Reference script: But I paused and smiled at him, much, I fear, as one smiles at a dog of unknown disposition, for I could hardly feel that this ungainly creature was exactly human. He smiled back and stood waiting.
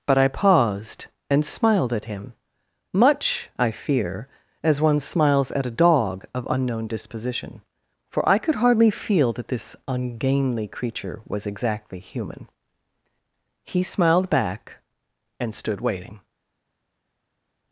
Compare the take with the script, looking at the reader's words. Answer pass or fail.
pass